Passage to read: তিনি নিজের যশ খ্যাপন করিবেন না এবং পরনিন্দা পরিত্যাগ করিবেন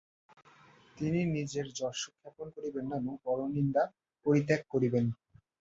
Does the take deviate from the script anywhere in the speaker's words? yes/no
no